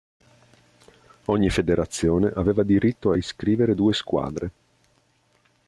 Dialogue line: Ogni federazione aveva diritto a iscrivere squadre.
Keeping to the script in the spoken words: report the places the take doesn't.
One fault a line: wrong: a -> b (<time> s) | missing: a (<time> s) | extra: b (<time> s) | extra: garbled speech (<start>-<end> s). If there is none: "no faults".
extra: due (3.7 s)